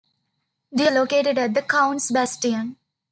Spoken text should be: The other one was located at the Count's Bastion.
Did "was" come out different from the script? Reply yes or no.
yes